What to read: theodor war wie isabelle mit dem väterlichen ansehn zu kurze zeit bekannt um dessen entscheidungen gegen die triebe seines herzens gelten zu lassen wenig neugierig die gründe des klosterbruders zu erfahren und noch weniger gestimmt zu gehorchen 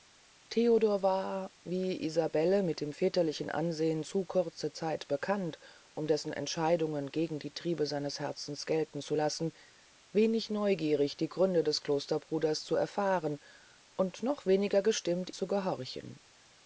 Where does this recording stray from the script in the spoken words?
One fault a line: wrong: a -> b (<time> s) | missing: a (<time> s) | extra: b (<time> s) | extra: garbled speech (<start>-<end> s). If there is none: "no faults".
no faults